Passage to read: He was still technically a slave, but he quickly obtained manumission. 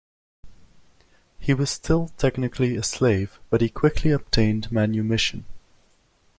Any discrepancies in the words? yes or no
no